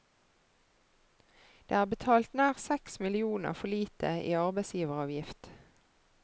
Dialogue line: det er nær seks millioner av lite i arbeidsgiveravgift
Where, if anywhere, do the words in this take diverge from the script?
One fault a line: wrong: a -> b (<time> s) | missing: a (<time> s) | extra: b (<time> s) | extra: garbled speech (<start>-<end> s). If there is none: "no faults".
extra: betalt (1.9 s)
wrong: av -> for (3.6 s)